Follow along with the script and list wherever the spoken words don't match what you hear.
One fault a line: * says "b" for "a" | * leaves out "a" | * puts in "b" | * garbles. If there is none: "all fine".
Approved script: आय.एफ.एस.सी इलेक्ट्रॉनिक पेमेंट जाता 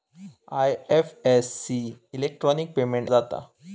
all fine